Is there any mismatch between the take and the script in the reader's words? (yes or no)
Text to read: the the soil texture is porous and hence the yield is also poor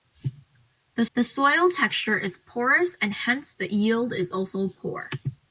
no